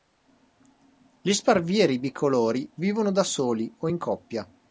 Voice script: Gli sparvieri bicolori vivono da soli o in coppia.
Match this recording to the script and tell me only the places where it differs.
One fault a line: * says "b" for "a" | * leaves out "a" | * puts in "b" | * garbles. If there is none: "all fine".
all fine